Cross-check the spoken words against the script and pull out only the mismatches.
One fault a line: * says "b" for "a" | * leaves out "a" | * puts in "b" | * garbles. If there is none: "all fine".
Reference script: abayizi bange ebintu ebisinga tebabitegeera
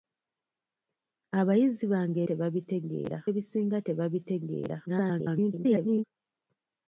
* says "tebabitegeera" for "ebintu"
* garbles